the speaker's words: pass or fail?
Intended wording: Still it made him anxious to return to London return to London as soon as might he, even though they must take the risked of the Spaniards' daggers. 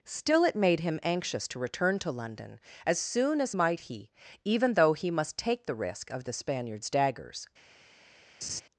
fail